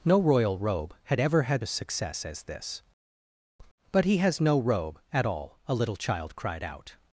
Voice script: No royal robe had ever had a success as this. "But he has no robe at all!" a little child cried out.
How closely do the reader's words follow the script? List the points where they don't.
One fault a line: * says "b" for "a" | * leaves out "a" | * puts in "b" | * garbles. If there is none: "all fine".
all fine